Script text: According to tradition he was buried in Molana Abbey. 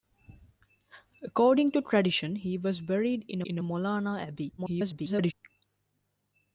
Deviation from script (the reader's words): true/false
true